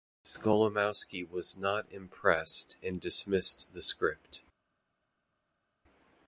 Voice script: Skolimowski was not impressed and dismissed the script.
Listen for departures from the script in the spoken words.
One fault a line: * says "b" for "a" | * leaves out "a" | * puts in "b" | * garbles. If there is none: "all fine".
all fine